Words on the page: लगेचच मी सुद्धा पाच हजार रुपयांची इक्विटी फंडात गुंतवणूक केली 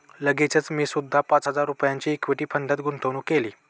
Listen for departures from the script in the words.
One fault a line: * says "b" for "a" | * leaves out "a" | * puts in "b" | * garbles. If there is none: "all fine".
all fine